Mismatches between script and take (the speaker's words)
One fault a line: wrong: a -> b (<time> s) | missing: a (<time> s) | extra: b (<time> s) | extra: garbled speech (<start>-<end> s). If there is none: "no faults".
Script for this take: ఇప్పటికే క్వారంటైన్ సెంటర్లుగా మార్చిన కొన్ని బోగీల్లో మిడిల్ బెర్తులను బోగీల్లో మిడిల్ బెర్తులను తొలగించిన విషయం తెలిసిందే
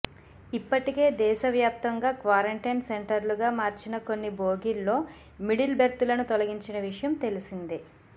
extra: దేశవ్యాప్తంగా (1.2 s)
missing: బోగీల్లో మిడిల్ బెర్తులను (6.3 s)